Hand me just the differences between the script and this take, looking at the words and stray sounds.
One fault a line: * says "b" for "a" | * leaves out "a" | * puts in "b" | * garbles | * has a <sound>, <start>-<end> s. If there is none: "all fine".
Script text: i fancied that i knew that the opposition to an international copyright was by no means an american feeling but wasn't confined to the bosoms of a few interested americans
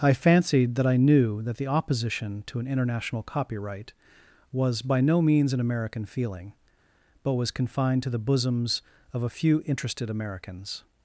* says "was" for "wasn't"